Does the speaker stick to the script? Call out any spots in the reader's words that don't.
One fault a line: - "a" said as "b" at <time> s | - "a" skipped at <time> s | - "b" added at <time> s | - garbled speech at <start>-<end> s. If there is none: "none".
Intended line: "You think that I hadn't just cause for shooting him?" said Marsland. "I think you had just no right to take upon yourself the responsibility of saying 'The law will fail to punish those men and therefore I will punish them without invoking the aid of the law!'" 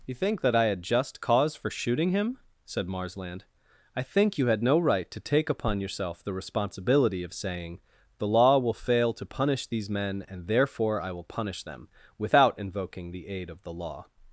- "hadn't" said as "had" at 0.7 s
- "just" skipped at 4.6 s
- "those" said as "these" at 9.7 s